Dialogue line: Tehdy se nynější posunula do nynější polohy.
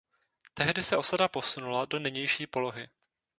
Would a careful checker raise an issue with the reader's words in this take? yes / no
yes